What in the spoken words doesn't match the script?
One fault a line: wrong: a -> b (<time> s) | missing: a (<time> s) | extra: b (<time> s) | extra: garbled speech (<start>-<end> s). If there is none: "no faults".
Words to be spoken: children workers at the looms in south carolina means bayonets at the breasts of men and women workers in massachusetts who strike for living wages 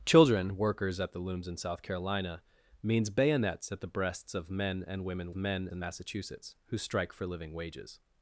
wrong: workers -> men (5.3 s)